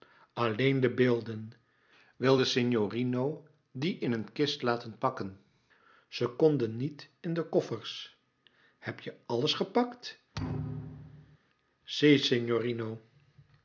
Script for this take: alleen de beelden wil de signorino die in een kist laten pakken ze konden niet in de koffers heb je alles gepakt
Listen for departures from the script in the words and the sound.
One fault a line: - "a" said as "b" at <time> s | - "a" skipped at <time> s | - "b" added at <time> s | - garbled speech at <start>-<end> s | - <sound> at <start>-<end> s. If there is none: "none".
- thud at 10.3-11.4 s